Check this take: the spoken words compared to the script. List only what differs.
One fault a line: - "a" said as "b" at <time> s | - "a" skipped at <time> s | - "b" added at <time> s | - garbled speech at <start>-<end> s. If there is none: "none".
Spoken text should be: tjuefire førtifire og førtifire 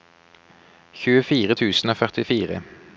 - "førtifire" said as "tusen" at 1.5 s